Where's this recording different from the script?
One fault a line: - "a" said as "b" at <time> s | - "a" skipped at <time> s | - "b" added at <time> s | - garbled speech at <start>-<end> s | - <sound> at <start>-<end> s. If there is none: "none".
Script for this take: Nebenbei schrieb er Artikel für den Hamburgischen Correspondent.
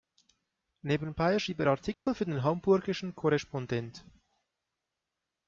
- dropout at 1.9-2.1 s